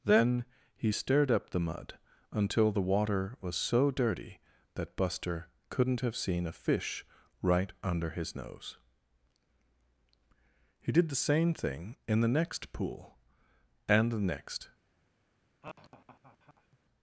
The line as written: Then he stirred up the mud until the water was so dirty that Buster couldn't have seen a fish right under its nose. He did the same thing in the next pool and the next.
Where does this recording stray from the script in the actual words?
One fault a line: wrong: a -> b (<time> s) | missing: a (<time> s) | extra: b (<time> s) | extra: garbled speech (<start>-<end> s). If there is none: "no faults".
wrong: its -> his (8.1 s)